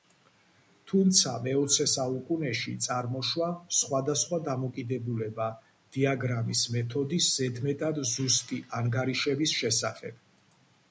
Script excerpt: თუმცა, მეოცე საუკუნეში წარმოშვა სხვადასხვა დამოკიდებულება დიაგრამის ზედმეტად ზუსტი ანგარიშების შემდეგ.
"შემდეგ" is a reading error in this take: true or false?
true